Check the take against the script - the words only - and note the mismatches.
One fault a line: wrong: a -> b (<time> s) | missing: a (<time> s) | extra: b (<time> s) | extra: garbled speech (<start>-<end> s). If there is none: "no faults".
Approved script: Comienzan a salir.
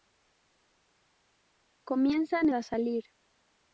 no faults